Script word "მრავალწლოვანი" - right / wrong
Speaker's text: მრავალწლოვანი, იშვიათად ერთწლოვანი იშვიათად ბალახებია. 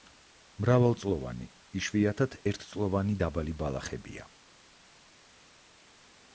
right